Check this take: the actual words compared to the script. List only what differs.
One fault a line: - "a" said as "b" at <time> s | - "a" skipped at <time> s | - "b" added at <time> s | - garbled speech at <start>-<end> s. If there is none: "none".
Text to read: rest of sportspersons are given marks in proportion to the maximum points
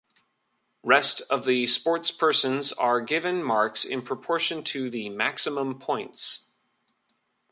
- "the" added at 1.4 s